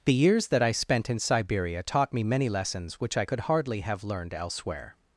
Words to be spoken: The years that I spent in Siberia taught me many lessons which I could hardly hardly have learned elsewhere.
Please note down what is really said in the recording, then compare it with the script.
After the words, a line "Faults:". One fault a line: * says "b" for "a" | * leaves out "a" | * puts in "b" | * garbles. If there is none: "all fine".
The years that I spent in Siberia taught me many lessons which I could hardly have learned elsewhere.
Faults:
* leaves out "hardly"